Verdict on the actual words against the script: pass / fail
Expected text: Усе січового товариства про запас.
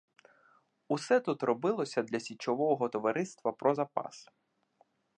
fail